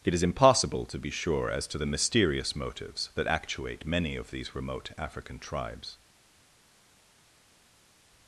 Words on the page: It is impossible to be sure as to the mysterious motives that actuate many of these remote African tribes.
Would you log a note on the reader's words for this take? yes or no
no